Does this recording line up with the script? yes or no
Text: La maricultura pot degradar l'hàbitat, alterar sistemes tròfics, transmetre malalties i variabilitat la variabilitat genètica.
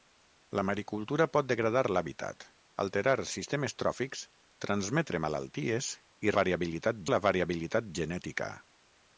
yes